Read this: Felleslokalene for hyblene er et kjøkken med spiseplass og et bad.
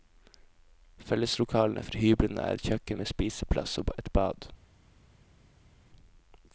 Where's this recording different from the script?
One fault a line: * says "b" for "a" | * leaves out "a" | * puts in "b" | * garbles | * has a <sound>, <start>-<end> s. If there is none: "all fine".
all fine